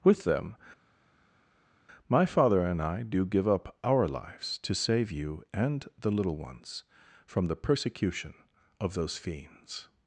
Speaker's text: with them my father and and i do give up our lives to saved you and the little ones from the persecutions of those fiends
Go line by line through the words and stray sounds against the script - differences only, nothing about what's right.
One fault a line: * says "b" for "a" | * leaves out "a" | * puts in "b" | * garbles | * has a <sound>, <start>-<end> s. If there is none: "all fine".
* leaves out "and"
* says "save" for "saved"
* says "persecution" for "persecutions"